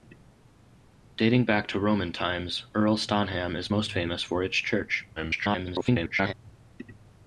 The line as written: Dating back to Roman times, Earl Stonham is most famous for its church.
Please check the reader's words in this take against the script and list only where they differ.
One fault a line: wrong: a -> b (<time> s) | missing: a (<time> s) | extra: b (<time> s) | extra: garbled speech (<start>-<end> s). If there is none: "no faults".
extra: garbled speech (5.2-6.3 s)